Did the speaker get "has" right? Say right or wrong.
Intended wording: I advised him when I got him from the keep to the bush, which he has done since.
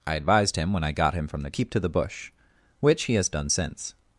right